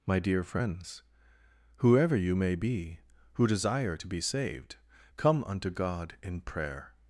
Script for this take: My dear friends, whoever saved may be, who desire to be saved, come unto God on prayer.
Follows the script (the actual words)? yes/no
no